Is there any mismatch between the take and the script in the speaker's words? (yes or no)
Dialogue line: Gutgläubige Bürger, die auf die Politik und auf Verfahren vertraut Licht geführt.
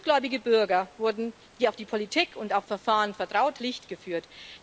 no